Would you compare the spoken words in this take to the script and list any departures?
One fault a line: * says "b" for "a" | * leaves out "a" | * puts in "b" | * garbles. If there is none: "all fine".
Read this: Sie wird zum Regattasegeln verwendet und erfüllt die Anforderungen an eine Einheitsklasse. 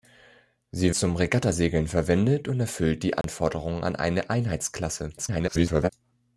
* leaves out "wird"
* garbles